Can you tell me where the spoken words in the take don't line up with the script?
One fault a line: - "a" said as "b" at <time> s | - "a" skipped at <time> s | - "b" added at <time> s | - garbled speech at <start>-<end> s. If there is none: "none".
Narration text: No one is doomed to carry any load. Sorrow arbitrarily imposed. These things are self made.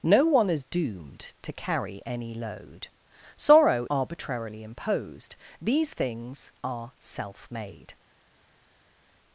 none